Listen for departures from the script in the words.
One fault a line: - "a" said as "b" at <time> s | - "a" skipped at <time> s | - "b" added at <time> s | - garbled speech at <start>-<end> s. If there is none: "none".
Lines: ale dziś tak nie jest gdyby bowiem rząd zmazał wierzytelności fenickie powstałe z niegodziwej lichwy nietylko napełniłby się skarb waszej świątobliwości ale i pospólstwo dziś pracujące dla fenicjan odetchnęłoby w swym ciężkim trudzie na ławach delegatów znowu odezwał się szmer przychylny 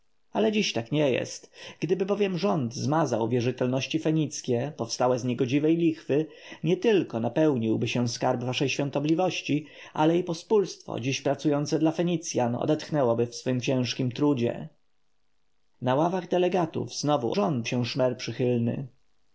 - "odezwał" said as "rząd" at 17.3 s